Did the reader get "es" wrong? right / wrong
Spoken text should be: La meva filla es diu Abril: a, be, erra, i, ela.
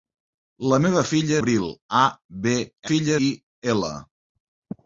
wrong